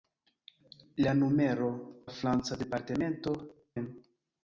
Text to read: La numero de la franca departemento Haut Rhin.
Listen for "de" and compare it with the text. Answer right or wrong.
wrong